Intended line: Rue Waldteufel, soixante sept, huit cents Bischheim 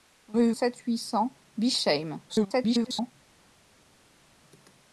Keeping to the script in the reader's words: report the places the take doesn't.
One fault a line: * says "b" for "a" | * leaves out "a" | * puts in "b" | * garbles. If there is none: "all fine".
* leaves out "Waldteufel soixante"
* garbles